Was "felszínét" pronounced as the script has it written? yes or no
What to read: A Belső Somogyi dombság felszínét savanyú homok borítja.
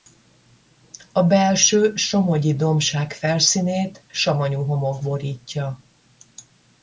yes